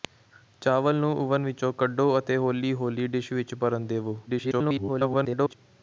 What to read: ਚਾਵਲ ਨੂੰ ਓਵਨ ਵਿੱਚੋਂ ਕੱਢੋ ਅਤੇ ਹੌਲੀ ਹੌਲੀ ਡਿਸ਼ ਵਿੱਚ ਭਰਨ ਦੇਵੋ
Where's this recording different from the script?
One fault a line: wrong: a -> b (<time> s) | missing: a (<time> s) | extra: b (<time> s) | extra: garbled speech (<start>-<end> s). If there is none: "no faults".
extra: garbled speech (4.3-5.5 s)